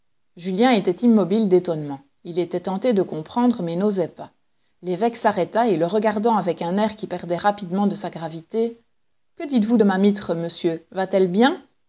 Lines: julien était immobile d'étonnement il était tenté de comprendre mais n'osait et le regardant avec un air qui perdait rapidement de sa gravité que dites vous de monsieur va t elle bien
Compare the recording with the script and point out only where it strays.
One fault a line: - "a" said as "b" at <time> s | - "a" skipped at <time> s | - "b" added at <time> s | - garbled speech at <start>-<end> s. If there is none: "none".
- "pas l'évêque s'arrêta" added at 4.1 s
- "ma mitre" added at 9.8 s